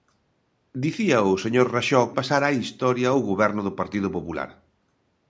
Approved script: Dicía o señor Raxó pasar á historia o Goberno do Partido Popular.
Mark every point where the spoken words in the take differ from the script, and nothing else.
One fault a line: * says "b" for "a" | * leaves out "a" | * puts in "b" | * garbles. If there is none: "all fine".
all fine